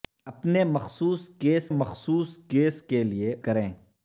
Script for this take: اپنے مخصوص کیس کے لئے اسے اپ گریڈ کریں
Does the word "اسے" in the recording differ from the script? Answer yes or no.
yes